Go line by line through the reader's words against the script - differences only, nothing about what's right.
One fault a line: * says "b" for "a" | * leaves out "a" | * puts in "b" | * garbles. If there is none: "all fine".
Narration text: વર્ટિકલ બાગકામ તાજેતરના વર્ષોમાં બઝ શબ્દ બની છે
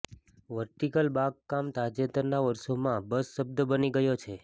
* puts in "ગયો"